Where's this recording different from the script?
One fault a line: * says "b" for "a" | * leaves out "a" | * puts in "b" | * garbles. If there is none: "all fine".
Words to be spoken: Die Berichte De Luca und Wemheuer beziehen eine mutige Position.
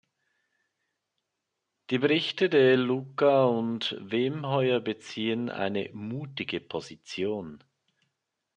all fine